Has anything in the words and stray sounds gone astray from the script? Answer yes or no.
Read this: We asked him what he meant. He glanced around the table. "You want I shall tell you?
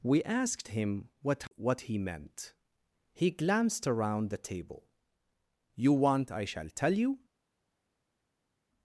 yes